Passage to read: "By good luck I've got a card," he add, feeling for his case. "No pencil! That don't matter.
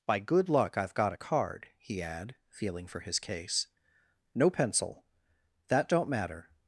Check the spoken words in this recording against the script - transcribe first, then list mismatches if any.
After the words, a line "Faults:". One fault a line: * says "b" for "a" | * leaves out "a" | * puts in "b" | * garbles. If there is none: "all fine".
"By good luck I've got a card," he add, feeling for his case. "No pencil! That don't matter.
Faults:
all fine